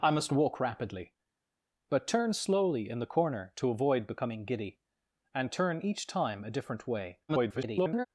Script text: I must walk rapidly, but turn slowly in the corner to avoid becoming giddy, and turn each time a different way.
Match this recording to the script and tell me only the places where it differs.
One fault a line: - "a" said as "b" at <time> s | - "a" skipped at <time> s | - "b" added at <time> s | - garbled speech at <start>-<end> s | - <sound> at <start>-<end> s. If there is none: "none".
- garbled speech at 7.3-8.1 s